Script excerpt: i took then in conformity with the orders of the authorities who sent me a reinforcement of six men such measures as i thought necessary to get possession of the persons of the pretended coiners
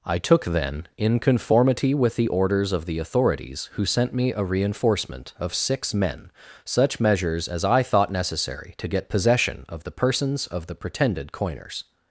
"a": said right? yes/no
yes